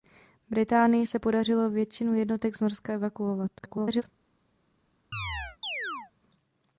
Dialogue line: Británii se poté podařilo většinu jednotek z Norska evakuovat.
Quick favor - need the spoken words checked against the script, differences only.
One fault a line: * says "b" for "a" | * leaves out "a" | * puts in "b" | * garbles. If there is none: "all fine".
* leaves out "poté"
* garbles